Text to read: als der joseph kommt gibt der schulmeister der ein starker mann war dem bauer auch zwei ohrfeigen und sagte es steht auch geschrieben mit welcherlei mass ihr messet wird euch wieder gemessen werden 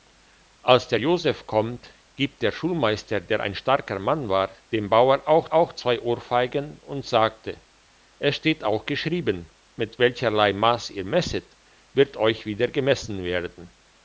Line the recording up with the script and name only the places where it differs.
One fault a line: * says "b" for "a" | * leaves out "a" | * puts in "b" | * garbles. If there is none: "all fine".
* puts in "auch"